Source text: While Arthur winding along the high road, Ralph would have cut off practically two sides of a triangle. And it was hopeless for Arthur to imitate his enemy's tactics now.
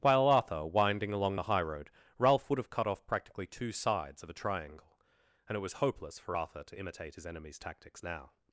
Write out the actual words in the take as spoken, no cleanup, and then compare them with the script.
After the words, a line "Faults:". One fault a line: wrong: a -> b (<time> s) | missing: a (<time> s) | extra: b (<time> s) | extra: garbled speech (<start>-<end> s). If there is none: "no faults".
While Arthur winding along the high road, Ralph would have cut off practically two sides of a triangle. And it was hopeless for Arthur to imitate his enemy's tactics now.
Faults:
no faults